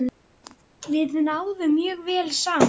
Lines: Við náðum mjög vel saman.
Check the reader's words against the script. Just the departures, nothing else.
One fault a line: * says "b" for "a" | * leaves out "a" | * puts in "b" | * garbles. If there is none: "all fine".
all fine